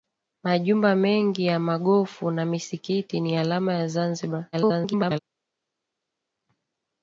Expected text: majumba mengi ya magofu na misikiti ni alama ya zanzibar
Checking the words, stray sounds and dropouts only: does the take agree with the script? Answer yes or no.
no